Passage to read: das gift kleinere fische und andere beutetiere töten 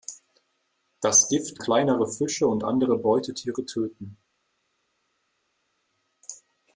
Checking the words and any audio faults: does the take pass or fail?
pass